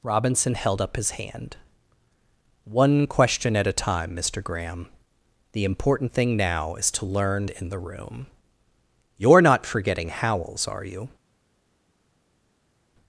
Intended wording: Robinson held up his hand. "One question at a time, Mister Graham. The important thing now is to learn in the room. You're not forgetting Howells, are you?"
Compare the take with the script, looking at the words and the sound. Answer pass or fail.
pass